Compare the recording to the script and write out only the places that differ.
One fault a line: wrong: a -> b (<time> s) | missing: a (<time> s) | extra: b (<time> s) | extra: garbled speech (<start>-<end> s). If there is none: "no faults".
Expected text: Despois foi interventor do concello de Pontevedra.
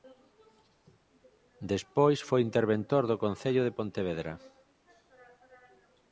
no faults